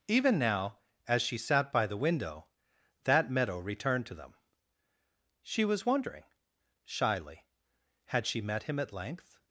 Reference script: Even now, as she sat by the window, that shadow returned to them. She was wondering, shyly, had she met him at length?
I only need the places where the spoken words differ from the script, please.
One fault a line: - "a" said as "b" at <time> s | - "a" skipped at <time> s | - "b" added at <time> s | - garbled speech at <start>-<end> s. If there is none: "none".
- "shadow" said as "meadow" at 3.3 s